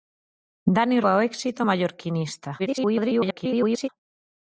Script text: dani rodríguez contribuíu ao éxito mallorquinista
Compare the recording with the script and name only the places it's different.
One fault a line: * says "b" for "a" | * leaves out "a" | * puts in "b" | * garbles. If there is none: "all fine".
* leaves out "rodríguez contribuíu"
* garbles